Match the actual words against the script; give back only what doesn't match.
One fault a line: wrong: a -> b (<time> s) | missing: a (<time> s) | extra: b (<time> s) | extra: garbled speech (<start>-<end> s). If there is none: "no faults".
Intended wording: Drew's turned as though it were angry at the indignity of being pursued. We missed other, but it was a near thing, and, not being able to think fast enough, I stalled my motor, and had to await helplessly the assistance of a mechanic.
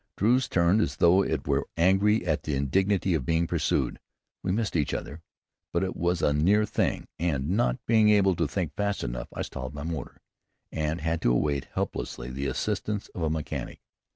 extra: each (4.8 s)